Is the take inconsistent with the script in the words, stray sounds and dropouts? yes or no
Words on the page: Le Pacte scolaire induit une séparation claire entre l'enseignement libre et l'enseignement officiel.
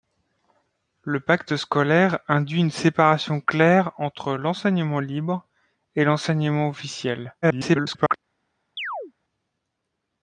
yes